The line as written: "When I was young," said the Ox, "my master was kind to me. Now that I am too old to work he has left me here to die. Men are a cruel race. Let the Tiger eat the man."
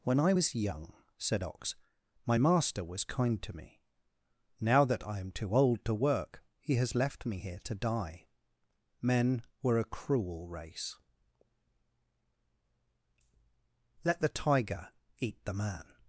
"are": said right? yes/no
no